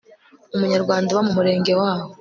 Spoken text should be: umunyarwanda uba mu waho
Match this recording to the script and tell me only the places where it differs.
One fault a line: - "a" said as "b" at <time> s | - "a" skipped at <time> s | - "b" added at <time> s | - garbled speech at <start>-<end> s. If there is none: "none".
- "murenge" added at 1.4 s